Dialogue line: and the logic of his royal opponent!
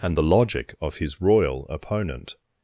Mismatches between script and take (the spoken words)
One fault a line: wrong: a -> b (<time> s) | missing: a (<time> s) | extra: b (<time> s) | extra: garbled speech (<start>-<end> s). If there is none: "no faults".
no faults